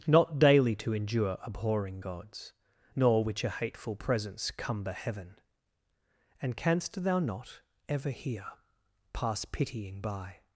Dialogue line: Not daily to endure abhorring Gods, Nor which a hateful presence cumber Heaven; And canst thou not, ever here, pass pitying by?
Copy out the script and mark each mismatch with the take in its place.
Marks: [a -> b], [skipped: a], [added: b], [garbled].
Not daily to endure abhorring Gods, Nor which a hateful presence cumber Heaven; And canst thou not, ever here, pass pitying by?